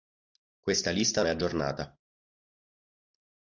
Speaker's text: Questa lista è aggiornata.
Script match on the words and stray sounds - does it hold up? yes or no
yes